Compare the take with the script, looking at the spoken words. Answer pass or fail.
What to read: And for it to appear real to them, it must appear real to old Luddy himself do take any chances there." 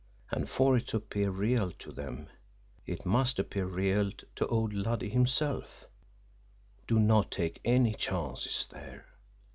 fail